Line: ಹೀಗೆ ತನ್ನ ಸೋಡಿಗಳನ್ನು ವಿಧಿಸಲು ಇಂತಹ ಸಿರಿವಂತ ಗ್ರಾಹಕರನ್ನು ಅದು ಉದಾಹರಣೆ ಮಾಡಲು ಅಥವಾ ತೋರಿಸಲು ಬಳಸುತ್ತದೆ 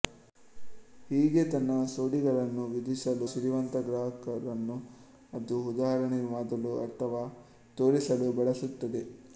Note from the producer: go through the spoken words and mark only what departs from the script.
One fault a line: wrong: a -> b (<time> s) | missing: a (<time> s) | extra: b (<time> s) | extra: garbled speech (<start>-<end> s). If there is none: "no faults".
missing: ಇಂತಹ (3.3 s)